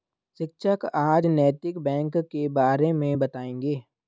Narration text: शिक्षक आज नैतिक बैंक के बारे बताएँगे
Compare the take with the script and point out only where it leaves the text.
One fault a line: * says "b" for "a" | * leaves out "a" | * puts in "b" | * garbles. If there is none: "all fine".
* puts in "मे"